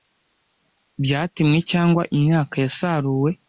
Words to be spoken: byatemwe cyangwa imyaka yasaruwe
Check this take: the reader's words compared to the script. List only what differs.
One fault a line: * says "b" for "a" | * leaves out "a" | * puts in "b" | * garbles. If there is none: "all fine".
all fine